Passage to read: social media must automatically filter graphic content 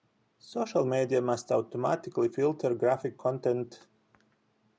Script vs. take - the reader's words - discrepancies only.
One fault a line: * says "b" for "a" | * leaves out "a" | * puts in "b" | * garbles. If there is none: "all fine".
all fine